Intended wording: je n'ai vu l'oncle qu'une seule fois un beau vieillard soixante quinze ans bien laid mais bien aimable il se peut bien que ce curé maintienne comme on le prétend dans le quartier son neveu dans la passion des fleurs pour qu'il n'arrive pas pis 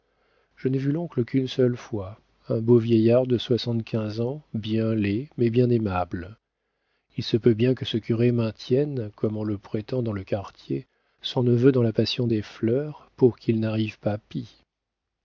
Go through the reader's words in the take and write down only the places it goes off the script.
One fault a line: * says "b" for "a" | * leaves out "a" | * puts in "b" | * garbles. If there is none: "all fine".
* puts in "de"